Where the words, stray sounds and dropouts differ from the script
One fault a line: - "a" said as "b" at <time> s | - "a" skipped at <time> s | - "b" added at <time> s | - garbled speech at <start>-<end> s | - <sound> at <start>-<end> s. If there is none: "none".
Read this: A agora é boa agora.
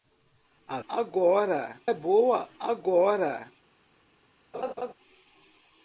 - laugh at 4.5-4.9 s